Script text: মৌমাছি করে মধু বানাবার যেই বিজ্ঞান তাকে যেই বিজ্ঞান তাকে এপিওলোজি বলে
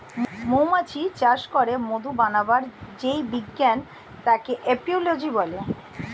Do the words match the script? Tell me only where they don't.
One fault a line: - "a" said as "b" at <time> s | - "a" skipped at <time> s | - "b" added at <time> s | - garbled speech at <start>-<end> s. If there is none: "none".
- "চাষ" added at 1.1 s
- "যেই বিজ্ঞান তাকে" skipped at 4.5 s